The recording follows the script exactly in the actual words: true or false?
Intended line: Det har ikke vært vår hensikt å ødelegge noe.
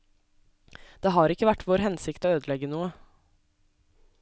true